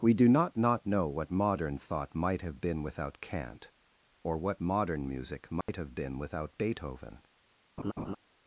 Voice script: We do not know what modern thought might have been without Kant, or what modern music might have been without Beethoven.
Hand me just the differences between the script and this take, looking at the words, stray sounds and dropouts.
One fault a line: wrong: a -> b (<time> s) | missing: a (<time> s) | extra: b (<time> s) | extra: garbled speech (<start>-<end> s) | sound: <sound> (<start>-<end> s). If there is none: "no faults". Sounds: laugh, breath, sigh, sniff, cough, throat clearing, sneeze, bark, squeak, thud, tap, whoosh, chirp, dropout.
extra: not (0.6 s)
sound: dropout (5.6-5.7 s)
sound: laugh (7.8-8.2 s)